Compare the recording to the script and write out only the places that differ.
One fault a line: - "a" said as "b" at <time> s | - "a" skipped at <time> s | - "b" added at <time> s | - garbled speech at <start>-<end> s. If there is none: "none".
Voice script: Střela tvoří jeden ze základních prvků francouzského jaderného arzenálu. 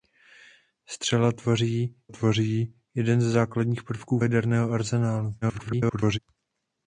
- "tvoří" added at 2.1 s
- "francouzského" skipped at 4.2 s
- garbled speech at 5.4-6.2 s